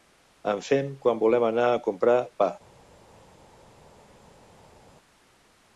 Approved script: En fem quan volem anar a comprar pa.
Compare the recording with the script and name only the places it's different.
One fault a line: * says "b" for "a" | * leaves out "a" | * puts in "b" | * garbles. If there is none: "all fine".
all fine